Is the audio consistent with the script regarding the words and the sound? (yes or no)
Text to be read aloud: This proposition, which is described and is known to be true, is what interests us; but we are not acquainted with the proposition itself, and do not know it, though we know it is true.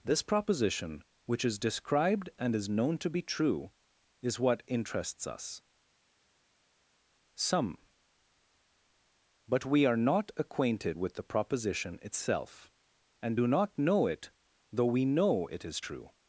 no